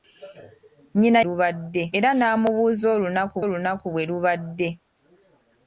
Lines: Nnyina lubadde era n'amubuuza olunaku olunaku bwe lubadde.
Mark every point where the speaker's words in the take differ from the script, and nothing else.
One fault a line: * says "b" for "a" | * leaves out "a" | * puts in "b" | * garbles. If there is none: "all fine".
all fine